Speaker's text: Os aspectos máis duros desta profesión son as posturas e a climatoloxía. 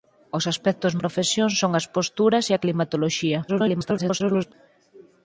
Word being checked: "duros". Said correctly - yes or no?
no